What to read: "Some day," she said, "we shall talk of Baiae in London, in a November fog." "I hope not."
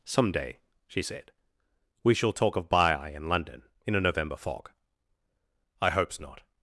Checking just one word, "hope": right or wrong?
wrong